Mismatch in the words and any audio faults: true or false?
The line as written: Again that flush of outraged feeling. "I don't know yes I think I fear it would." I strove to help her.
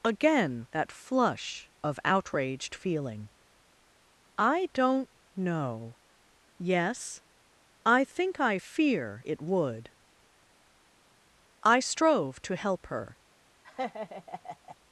true